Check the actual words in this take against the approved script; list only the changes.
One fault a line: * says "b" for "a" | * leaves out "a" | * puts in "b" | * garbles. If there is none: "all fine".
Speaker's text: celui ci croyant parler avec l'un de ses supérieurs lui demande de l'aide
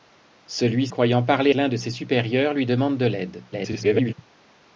* leaves out "ci"
* leaves out "avec"
* garbles